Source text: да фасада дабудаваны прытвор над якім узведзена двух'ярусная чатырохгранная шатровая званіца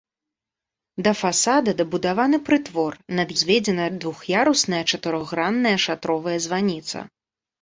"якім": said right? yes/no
no